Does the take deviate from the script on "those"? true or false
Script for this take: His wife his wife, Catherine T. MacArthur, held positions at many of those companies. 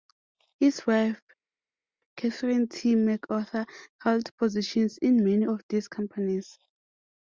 true